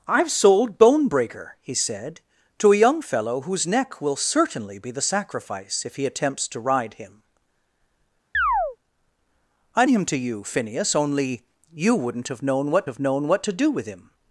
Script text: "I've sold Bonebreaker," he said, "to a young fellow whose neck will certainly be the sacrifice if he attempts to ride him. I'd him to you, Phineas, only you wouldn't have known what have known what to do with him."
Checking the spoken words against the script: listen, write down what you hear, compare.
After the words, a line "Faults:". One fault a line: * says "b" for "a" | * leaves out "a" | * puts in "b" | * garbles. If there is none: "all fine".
"I've sold Bonebreaker," he said, "to a young fellow whose neck will certainly be the sacrifice if he attempts to ride him. I'd him to you, Phineas, only you wouldn't have known what have known what to do with him."
Faults:
all fine